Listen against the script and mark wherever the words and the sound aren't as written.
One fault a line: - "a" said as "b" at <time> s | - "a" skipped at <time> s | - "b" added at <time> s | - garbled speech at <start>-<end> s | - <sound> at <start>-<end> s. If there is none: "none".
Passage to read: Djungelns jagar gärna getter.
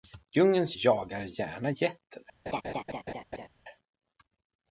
- laugh at 2.5-3.5 s